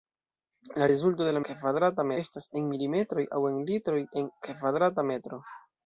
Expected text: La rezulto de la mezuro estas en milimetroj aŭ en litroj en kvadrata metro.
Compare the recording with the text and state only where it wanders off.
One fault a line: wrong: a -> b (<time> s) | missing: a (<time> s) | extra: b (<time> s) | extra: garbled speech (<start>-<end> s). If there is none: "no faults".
wrong: mezuro -> kvadrata (1.5 s)